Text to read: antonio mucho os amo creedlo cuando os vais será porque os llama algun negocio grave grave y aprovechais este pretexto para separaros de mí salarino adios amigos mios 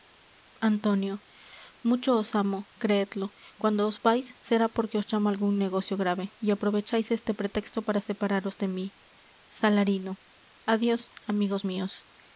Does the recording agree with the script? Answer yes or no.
no